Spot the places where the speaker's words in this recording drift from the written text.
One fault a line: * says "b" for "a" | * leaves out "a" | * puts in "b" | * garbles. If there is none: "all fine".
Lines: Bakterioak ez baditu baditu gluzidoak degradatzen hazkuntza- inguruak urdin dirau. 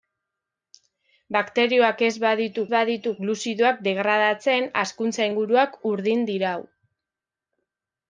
all fine